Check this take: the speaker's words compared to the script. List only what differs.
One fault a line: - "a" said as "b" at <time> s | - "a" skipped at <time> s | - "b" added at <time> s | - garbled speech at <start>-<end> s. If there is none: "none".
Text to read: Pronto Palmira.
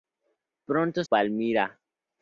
none